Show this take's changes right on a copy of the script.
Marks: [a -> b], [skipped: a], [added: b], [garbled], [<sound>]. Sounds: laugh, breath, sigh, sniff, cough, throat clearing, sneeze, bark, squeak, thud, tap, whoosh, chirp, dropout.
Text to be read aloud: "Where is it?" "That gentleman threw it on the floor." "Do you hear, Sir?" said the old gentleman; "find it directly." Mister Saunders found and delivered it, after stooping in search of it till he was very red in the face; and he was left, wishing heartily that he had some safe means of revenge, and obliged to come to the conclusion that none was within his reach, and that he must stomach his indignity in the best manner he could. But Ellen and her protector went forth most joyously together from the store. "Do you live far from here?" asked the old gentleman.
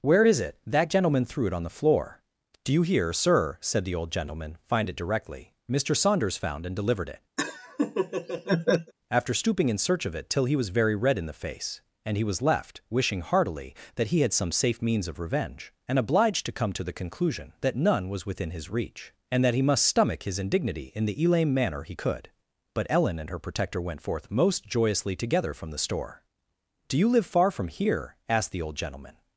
"Where is it?" "That gentleman threw it on the floor." "Do you hear, Sir?" said the old gentleman; "find it directly." Mister Saunders found and delivered it, [laugh] after stooping in search of it till he was very red in the face; and he was left, wishing heartily that he had some safe means of revenge, and obliged to come to the conclusion that none was within his reach, and that he must stomach his indignity in the [best -> elame] manner he could. But Ellen and her protector went forth most joyously together from the store. "Do you live far from here?" asked the old gentleman.